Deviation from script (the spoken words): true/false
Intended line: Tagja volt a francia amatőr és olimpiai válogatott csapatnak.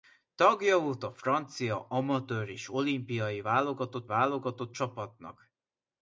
true